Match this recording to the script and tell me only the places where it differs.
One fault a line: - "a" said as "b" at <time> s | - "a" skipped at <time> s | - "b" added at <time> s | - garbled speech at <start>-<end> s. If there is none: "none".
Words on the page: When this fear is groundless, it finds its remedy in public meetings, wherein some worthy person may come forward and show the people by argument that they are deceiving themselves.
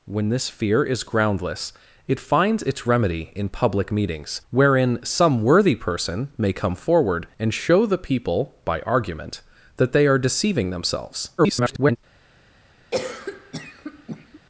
- garbled speech at 11.4-12.0 s